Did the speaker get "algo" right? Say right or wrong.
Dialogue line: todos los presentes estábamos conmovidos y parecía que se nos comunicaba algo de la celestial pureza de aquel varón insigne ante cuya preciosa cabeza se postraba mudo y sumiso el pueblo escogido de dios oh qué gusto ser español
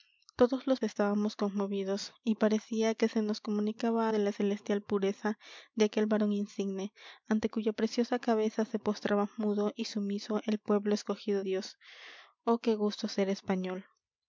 wrong